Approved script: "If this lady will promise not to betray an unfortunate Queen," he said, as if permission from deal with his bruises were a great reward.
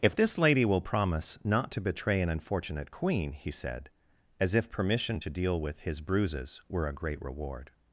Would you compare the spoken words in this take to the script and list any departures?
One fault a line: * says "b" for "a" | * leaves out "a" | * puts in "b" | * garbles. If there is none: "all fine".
* says "to" for "from"